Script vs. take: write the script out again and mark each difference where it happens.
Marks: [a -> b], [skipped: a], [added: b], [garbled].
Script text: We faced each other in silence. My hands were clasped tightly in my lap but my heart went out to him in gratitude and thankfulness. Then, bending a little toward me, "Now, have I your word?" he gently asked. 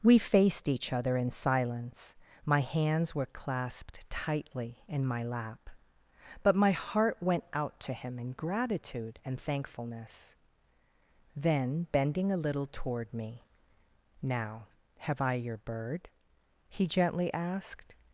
We faced each other in silence. My hands were clasped tightly in my lap but my heart went out to him in gratitude and thankfulness. Then, bending a little toward me, "Now, have I your [word?" -> bird] he gently asked.